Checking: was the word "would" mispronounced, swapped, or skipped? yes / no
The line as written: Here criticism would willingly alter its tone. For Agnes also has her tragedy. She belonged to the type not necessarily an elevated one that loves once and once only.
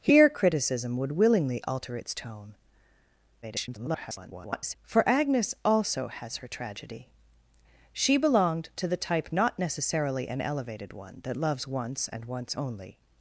no